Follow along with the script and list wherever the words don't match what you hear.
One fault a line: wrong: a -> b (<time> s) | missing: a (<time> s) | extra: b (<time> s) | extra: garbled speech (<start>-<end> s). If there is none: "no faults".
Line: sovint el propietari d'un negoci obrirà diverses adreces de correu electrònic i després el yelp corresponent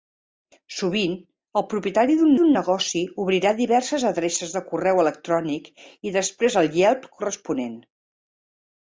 extra: d'un (2.4 s)